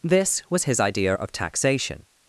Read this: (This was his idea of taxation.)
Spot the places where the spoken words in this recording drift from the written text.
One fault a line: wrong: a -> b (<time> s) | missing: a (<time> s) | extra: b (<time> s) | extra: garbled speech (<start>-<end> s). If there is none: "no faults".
no faults